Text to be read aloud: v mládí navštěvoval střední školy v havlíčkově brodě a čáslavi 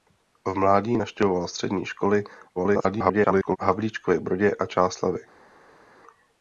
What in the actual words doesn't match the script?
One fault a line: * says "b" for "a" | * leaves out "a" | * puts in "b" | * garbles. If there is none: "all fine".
* garbles